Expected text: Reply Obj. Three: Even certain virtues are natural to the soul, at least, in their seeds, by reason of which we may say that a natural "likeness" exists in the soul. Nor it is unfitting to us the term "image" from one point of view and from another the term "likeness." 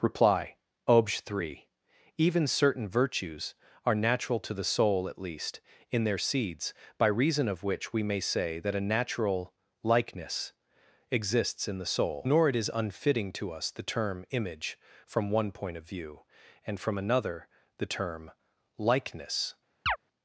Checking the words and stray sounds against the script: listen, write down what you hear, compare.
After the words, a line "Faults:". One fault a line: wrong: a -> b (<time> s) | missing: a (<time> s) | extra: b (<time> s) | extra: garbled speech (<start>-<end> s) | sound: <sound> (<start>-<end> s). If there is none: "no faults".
Reply Obj. Three: Even certain virtues are natural to the soul, at least, in their seeds, by reason of which we may say that a natural "likeness" exists in the soul. Nor it is unfitting to us the term "image" from one point of view and from another the term "likeness."
Faults:
sound: chirp (19.9-20.0 s)